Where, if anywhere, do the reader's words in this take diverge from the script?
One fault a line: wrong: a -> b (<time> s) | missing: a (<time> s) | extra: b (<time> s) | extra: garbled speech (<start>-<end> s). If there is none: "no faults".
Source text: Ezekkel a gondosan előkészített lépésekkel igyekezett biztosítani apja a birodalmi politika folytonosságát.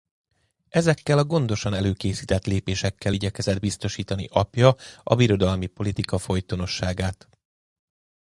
no faults